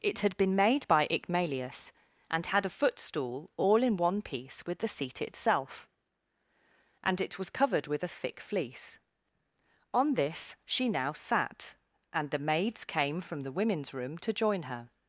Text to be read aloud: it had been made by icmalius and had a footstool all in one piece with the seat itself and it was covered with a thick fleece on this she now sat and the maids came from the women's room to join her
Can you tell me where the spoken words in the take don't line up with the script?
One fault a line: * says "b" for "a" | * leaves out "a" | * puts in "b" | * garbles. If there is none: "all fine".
all fine